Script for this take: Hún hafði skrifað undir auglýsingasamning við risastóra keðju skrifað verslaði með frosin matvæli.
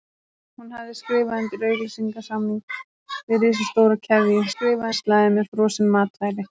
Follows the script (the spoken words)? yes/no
yes